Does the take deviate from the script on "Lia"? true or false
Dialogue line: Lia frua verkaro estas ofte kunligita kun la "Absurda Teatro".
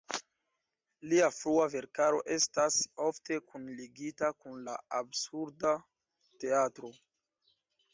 false